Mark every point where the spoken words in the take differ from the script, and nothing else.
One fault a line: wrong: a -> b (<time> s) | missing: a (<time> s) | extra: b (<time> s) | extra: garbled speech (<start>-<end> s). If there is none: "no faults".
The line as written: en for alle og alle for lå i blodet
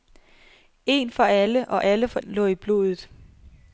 no faults